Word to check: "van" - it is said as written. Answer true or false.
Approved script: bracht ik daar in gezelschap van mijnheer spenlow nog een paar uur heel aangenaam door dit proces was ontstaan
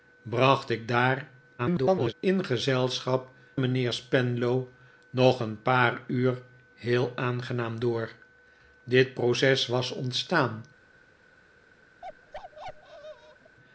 false